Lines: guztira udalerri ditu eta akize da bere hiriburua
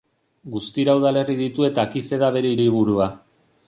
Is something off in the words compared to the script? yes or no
no